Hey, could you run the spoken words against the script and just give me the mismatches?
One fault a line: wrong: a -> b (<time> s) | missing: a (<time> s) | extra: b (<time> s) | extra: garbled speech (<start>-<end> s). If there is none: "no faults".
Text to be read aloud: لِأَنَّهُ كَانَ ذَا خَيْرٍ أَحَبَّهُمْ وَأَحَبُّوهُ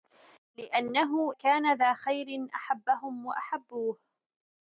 no faults